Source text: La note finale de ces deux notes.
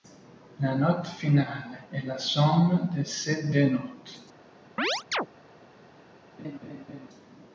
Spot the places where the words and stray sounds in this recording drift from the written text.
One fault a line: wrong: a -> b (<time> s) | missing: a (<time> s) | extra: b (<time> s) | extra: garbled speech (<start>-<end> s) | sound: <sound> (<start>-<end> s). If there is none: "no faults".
extra: est la somme (1.9 s)
sound: chirp (4.8-5.3 s)
sound: laugh (6.4-7.1 s)